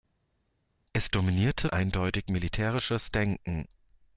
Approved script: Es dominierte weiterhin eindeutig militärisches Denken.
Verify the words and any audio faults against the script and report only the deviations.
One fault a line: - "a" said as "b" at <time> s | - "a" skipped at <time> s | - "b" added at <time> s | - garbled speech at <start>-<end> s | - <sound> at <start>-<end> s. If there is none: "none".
- "weiterhin" skipped at 1.7 s